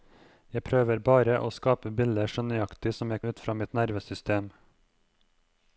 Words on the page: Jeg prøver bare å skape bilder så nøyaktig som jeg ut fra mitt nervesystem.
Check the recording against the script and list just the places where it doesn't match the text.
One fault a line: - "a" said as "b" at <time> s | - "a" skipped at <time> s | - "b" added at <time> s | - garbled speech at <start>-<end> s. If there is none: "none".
none